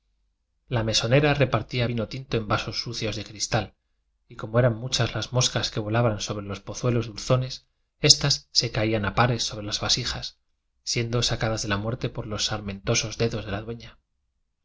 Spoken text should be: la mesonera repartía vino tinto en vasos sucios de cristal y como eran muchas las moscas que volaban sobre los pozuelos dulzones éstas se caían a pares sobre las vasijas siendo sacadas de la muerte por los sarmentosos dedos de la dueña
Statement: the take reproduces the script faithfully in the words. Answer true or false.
true